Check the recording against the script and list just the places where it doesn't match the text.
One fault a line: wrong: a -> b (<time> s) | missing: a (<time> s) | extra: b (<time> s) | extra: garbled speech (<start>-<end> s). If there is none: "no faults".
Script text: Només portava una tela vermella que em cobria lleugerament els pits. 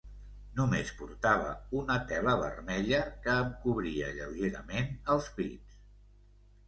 no faults